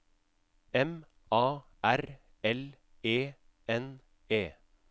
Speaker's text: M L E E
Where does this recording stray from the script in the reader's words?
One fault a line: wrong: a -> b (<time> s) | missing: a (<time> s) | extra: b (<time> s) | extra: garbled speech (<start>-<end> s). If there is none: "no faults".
extra: A R (1.3 s)
extra: N (3.7 s)